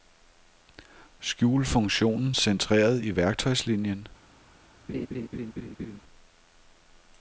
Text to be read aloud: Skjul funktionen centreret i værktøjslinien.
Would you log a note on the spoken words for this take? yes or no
no